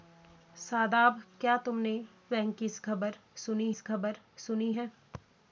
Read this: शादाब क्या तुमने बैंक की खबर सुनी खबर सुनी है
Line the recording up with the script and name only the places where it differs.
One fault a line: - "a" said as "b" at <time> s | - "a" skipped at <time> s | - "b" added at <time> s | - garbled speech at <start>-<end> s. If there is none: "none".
none